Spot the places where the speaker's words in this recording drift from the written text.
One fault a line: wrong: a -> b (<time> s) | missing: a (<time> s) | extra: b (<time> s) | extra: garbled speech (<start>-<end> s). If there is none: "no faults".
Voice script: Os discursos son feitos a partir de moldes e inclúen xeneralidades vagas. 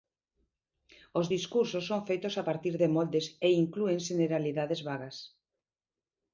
no faults